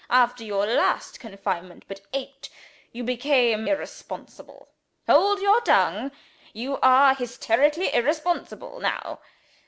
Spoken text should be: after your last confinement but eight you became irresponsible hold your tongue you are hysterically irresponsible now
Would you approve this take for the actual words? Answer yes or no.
yes